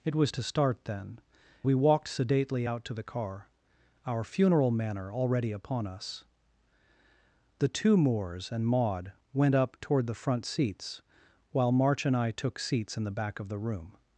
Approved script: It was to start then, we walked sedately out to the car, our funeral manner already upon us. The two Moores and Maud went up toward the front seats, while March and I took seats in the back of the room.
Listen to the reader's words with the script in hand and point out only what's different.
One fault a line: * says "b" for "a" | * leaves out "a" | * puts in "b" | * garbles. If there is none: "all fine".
all fine